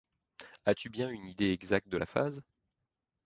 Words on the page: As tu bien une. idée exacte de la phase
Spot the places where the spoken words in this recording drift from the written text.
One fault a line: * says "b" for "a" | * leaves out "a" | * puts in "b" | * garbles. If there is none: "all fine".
all fine